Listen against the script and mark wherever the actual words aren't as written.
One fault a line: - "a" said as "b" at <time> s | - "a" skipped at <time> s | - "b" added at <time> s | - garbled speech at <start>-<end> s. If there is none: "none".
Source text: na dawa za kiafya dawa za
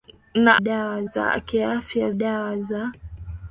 none